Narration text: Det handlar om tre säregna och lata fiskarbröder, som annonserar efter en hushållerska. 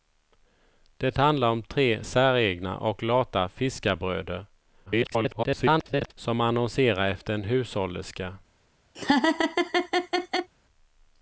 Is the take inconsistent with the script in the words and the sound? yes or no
yes